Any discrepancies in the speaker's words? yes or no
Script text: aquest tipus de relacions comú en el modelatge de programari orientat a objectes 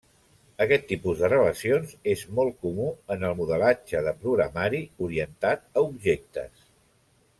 yes